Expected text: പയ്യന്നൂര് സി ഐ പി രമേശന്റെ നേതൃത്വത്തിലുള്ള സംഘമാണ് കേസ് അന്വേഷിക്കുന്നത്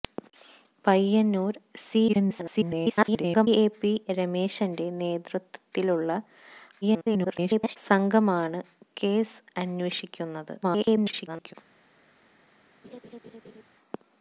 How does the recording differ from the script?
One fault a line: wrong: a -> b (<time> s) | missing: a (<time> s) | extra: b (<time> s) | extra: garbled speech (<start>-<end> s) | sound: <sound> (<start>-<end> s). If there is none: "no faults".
extra: garbled speech (2.1-3.5 s)
extra: garbled speech (6.8-7.8 s)
extra: garbled speech (10.6-11.5 s)
sound: laugh (12.8-13.6 s)